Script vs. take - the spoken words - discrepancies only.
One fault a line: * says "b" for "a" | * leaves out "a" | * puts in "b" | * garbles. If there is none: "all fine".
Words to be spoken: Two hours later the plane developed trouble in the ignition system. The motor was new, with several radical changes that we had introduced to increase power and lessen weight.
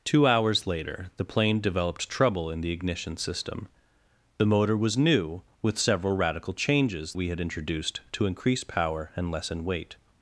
* leaves out "that"